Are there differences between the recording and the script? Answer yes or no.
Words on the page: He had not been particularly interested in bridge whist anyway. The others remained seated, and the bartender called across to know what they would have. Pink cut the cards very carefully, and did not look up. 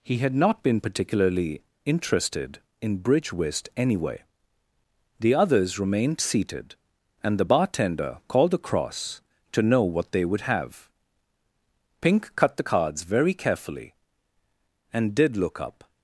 yes